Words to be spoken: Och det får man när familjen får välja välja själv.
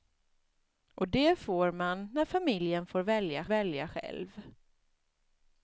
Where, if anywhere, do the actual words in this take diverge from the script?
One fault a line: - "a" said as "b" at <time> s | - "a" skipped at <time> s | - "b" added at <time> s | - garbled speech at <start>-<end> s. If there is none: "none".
none